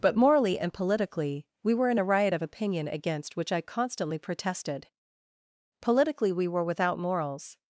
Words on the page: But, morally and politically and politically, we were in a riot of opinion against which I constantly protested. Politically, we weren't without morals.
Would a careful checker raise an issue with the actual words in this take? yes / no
yes